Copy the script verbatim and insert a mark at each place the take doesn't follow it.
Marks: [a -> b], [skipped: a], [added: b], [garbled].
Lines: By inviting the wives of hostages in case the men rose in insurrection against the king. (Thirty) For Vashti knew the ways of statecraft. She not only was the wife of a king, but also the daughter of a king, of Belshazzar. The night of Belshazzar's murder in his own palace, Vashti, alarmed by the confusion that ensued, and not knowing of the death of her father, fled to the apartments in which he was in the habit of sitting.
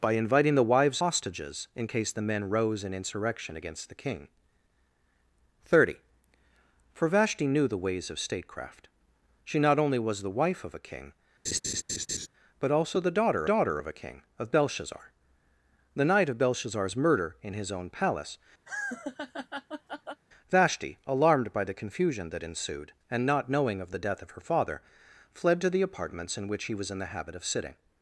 By inviting the wives [skipped: of] hostages in case the men rose in insurrection against the king. (Thirty) For Vashti knew the ways of statecraft. She not only was the wife of a king, but also the daughter [added: daughter] of a king, of Belshazzar. The night of Belshazzar's murder in his own palace, Vashti, alarmed by the confusion that ensued, and not knowing of the death of her father, fled to the apartments in which he was in the habit of sitting.